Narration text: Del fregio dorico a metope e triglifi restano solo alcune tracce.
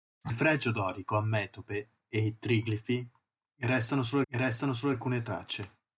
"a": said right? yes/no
yes